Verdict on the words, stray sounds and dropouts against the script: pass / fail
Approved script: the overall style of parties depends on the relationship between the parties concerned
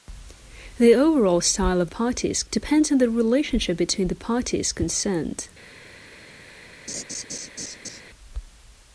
fail